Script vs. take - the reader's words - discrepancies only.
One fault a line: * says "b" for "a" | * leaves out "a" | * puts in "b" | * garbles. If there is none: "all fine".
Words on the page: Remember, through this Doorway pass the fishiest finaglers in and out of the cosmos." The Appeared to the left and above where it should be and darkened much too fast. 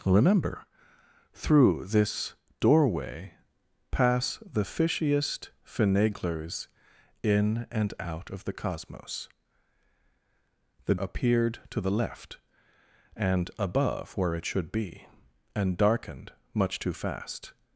all fine